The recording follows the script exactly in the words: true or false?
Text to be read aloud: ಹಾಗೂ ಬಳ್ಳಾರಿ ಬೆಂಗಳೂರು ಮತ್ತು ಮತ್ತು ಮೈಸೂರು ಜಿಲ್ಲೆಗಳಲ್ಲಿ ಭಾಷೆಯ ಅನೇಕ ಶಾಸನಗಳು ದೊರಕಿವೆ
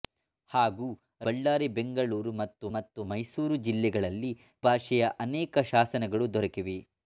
true